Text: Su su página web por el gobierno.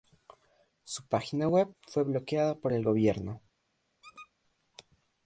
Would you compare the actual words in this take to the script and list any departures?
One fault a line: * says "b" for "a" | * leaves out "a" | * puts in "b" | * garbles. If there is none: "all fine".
* leaves out "su"
* puts in "fue bloqueada"